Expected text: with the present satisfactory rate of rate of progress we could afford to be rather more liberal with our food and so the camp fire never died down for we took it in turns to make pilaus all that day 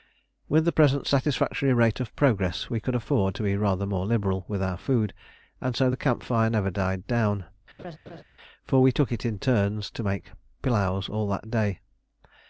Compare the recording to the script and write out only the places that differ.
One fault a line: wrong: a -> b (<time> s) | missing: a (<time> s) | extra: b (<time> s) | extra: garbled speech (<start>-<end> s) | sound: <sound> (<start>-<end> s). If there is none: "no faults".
missing: rate of (2.1 s)
sound: laugh (7.8-8.2 s)